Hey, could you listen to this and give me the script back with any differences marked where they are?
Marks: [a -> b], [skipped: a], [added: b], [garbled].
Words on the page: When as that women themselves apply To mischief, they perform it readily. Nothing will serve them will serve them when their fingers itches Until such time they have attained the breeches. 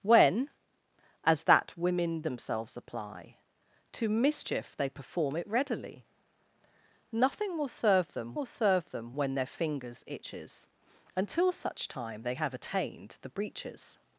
When as that women themselves apply To mischief, they perform it readily. Nothing will serve them will serve them when their fingers itches Until such time they have attained the breeches.